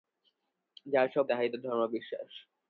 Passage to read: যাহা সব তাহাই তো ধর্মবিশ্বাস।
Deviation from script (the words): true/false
false